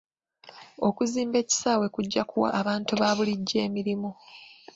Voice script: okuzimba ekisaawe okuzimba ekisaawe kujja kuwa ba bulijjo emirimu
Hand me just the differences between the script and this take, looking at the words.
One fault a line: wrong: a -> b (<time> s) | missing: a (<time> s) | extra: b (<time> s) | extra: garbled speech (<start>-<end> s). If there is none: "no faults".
missing: okuzimba ekisaawe (1.9 s)
extra: abantu (2.6 s)